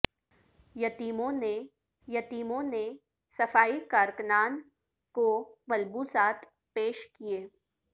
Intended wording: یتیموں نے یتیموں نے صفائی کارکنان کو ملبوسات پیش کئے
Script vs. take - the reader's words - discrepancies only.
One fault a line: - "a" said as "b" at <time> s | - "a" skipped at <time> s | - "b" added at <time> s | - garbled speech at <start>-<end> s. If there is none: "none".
none